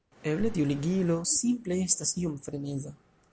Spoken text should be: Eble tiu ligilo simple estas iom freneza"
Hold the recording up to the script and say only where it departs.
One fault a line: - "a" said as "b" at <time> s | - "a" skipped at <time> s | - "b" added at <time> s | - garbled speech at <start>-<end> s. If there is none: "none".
none